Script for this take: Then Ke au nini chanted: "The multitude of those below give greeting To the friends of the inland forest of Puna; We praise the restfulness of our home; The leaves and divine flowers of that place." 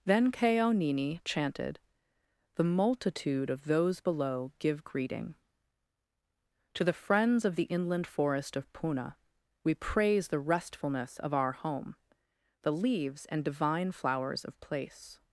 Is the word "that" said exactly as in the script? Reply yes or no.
no